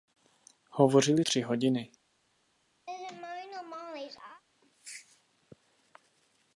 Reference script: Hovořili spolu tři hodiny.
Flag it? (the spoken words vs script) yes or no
yes